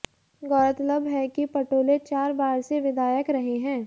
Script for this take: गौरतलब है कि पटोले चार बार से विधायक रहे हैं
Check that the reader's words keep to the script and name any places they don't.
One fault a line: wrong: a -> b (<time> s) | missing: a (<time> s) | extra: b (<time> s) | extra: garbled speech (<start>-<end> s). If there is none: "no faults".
no faults